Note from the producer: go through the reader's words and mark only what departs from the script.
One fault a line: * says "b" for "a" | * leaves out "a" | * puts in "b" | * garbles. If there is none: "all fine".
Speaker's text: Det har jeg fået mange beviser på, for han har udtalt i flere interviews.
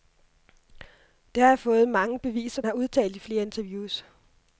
* leaves out "på for han"